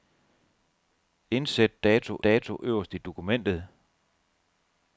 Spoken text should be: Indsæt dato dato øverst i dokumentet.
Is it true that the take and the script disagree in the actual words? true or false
false